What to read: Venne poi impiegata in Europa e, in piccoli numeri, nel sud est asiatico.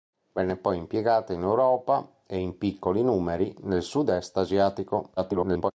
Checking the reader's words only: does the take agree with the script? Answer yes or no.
no